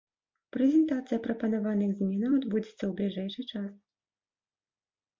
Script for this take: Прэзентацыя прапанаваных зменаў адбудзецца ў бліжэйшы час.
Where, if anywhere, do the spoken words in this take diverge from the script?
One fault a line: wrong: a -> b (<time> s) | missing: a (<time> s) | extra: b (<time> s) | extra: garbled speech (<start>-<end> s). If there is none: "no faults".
no faults